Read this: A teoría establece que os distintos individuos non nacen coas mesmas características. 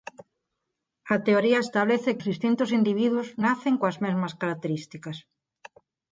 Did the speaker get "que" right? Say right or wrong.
wrong